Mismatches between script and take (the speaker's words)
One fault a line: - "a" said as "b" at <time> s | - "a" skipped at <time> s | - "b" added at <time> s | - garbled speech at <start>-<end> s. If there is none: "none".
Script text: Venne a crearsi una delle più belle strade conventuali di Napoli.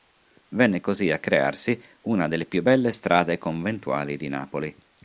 - "così" added at 0.8 s